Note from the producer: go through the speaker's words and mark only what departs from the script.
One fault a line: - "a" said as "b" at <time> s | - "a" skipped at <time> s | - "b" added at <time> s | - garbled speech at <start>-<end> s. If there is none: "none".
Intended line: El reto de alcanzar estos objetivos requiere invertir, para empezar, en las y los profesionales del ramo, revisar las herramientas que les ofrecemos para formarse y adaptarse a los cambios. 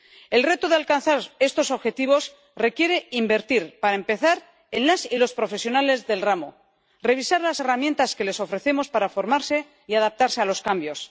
none